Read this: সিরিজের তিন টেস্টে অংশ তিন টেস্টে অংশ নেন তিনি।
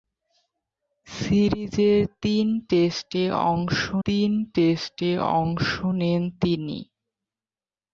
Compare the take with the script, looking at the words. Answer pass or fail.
pass